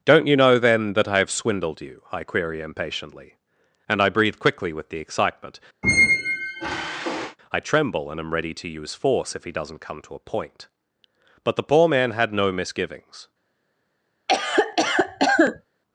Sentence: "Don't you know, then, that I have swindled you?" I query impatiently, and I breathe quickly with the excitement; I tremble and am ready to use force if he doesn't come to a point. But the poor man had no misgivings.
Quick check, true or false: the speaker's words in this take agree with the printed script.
true